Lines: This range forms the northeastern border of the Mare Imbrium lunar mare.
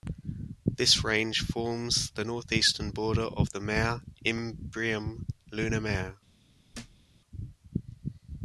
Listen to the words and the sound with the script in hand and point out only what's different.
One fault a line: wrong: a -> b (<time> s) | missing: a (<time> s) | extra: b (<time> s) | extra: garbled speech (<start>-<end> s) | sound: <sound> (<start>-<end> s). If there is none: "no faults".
sound: thud (6.7-7.0 s)